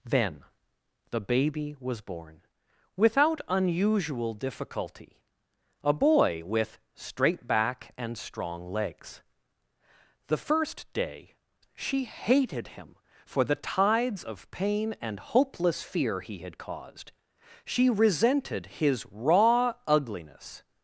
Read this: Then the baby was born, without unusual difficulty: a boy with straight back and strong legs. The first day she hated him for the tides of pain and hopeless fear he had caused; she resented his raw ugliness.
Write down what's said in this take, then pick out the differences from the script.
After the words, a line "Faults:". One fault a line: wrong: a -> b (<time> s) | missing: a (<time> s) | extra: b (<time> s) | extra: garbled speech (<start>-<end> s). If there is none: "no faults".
Then the baby was born, without unusual difficulty: a boy with straight back and strong legs. The first day she hated him for the tides of pain and hopeless fear he had caused; she resented his raw ugliness.
Faults:
no faults